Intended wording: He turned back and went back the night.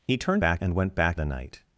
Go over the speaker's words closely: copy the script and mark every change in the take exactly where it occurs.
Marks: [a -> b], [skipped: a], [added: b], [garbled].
He turned back and went back the night.